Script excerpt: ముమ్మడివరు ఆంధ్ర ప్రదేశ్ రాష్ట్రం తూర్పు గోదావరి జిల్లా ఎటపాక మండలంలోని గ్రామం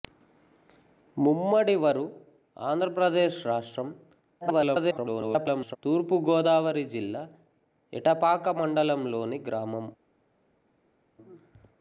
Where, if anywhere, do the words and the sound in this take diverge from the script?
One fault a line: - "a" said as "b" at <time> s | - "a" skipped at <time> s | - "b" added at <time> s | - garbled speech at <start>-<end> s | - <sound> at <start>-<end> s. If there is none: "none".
- garbled speech at 4.4-5.8 s